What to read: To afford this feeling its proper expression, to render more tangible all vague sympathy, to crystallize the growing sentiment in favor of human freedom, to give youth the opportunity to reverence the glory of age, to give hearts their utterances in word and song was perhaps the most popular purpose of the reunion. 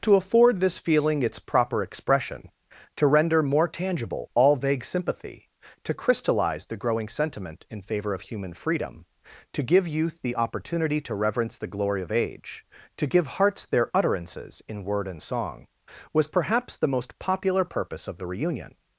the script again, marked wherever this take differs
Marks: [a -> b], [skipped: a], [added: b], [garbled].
To afford this feeling its proper expression, to render more tangible all vague sympathy, to crystallize the growing sentiment in favor of human freedom, to give youth the opportunity to reverence the glory of age, to give hearts their utterances in word and song was perhaps the most popular purpose of the reunion.